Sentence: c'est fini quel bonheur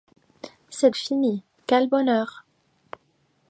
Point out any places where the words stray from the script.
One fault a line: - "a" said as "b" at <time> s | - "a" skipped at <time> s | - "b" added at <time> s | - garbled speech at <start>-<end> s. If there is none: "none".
none